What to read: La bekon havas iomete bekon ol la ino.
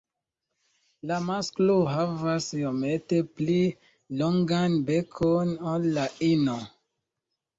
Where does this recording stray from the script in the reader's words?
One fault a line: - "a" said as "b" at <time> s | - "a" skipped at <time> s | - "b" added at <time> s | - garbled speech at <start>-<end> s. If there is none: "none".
- "bekon" said as "masklo" at 1.2 s
- "pli longan" added at 3.4 s